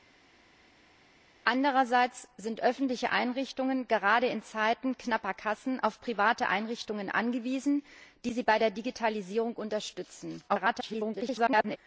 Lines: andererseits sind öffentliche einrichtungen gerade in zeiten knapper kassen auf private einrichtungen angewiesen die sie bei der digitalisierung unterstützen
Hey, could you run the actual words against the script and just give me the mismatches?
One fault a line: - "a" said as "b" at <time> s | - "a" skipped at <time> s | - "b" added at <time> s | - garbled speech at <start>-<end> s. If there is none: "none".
- garbled speech at 10.5-11.8 s